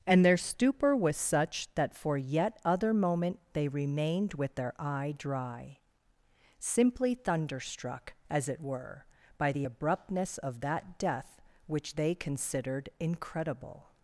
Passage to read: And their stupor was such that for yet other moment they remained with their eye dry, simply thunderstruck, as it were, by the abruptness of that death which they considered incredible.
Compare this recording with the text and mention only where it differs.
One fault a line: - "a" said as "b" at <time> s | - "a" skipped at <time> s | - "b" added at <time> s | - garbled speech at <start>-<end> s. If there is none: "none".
none